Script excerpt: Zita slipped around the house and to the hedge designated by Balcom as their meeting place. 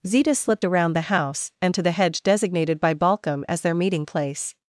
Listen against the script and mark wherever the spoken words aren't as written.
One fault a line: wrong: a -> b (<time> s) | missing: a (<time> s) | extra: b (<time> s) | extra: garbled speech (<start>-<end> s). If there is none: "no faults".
no faults